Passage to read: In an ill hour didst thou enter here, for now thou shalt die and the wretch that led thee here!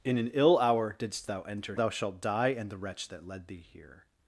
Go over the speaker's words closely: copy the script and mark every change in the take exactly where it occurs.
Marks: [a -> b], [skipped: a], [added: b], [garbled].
In an ill hour didst thou enter [skipped: here, for now] thou shalt die and the wretch that led thee here!